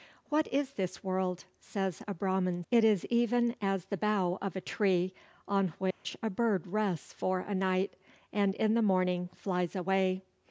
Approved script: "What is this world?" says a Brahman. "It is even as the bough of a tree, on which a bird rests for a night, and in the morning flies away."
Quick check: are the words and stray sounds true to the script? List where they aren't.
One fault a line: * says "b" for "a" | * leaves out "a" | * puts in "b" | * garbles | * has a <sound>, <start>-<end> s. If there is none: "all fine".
* has a dropout, 5.9-6.0 s